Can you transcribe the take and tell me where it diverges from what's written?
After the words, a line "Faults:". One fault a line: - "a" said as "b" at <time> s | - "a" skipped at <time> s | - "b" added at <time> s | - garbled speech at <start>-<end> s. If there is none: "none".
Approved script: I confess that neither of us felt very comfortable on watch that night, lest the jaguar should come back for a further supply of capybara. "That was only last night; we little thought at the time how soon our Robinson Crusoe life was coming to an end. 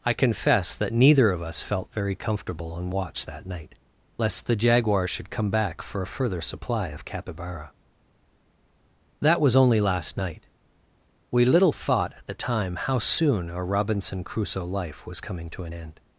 I confess that neither of us felt very comfortable on watch that night, lest the jaguar should come back for a further supply of capybara. "That was only last night; we little thought at the time how soon our Robinson Crusoe life was coming to an end.
Faults:
none